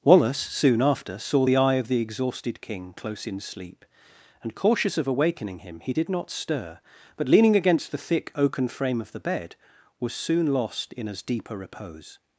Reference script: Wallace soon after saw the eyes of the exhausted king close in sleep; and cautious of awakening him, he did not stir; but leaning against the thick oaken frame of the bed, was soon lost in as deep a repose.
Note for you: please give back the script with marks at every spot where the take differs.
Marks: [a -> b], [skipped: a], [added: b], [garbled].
Wallace soon after saw the [eyes -> eye] of the exhausted king close in sleep; and cautious of awakening him, he did not stir; but leaning against the thick oaken frame of the bed, was soon lost in as deep a repose.